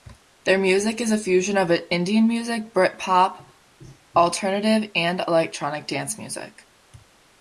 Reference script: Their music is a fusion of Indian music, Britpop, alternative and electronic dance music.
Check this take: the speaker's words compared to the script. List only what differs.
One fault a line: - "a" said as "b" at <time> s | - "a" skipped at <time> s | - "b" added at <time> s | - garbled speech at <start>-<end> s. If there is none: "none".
none